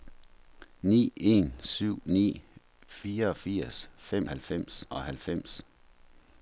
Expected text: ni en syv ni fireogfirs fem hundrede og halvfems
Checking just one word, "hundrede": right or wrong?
wrong